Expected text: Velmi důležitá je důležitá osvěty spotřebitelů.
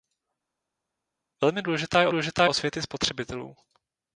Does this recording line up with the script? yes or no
yes